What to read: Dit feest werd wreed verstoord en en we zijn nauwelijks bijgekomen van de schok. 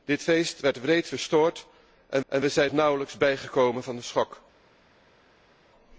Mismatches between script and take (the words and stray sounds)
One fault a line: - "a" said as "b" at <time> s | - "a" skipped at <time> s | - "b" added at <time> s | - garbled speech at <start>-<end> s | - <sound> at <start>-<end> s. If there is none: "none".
none